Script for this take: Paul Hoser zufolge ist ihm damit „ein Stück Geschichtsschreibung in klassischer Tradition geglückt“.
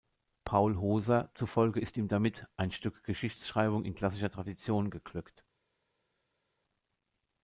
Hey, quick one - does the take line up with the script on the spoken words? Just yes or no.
yes